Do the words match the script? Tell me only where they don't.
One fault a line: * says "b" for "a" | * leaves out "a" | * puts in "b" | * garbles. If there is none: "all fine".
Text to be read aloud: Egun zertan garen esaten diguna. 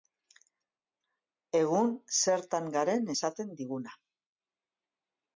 all fine